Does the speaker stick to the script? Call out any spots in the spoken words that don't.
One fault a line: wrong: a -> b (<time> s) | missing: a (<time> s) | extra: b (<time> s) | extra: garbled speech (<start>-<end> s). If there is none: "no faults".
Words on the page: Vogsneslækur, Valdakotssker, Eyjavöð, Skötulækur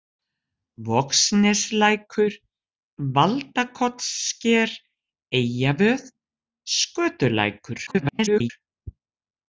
extra: garbled speech (7.9-8.5 s)